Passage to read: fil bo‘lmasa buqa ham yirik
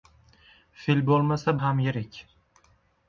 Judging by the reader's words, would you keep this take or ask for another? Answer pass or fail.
fail